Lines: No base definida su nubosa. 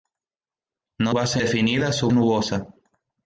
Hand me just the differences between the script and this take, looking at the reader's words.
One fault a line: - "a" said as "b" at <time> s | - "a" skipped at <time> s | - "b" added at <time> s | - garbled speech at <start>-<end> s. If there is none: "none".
none